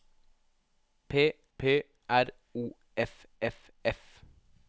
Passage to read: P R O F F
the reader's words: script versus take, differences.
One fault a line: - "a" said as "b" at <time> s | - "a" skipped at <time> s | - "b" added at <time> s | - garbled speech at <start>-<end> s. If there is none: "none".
- "p" added at 1.6 s
- "F" added at 3.8 s